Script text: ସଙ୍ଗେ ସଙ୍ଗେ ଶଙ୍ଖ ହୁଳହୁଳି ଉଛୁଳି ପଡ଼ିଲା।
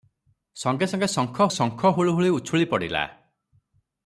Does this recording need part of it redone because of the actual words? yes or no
yes